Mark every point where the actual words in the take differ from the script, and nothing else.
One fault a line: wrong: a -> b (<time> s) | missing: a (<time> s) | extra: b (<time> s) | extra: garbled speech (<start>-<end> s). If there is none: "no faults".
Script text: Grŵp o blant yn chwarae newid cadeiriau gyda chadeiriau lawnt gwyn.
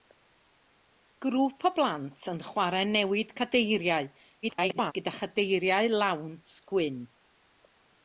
extra: garbled speech (4.4-4.9 s)